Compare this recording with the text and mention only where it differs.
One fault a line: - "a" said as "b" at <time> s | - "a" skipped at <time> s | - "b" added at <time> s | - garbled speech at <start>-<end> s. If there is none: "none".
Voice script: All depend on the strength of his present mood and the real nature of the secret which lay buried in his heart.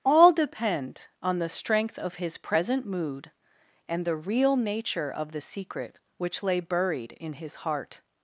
none